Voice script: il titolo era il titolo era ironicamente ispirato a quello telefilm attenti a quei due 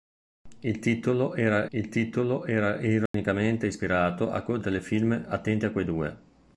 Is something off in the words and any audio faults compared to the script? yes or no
yes